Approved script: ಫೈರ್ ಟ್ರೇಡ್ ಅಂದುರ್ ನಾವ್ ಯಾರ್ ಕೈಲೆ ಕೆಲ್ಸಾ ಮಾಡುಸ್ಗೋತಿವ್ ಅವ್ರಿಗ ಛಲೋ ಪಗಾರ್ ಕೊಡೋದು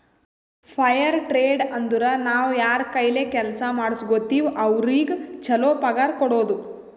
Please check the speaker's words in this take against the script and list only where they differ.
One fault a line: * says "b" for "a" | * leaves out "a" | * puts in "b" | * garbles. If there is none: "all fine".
all fine